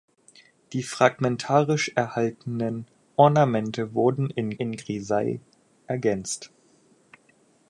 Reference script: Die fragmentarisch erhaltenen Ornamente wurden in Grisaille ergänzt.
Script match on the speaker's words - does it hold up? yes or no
no